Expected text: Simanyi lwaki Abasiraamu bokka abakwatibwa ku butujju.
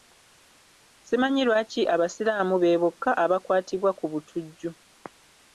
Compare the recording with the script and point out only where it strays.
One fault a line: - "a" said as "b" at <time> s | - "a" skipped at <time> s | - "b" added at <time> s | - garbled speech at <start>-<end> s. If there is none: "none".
- "be" added at 2.6 s